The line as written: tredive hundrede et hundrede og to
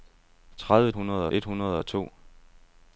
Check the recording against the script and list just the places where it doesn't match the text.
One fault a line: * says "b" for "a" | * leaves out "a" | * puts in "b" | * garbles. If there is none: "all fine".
all fine